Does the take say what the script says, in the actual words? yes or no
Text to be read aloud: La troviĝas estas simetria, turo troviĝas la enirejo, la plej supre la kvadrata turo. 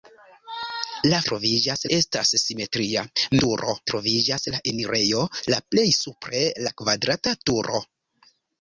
yes